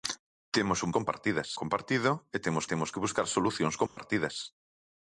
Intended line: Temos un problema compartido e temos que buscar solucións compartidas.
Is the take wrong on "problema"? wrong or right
wrong